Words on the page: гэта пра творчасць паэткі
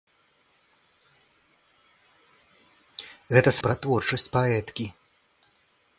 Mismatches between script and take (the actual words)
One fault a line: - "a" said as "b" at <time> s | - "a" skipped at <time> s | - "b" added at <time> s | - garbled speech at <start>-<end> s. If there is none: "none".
none